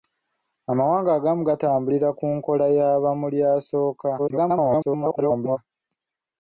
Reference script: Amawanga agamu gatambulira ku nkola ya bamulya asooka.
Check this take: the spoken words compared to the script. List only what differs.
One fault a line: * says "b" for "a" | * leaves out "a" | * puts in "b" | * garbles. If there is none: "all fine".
* garbles